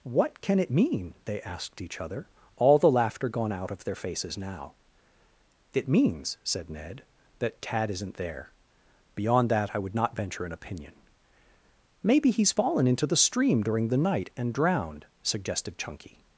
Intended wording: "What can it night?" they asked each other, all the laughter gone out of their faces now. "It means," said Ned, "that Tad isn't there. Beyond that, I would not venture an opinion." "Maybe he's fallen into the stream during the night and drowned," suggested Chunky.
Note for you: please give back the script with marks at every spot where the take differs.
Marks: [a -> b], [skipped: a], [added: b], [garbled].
"What can it [night?" -> mean] they asked each other, all the laughter gone out of their faces now. "It means," said Ned, "that Tad isn't there. Beyond that, I would not venture an opinion." "Maybe he's fallen into the stream during the night and drowned," suggested Chunky.